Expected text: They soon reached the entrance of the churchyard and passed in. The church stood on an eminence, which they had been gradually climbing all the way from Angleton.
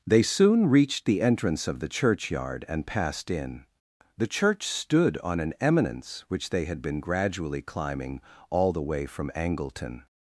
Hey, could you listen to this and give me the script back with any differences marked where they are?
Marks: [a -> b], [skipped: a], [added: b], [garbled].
They soon reached the entrance of the churchyard and passed in. The church stood on an eminence, which they had been gradually climbing all the way from Angleton.